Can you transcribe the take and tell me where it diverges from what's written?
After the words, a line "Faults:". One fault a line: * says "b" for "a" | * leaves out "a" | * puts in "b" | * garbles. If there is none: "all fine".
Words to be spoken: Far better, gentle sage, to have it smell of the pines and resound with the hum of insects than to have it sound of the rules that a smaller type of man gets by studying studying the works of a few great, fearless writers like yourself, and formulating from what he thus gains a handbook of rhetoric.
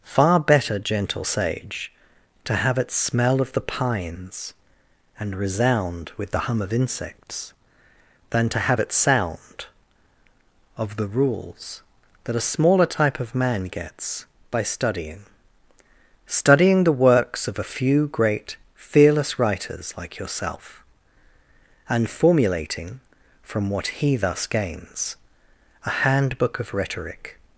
Far better, gentle sage, to have it smell of the pines and resound with the hum of insects than to have it sound of the rules that a smaller type of man gets by studying studying the works of a few great, fearless writers like yourself, and formulating from what he thus gains a handbook of rhetoric.
Faults:
all fine